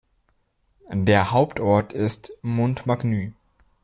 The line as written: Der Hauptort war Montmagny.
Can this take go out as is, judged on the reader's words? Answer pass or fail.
fail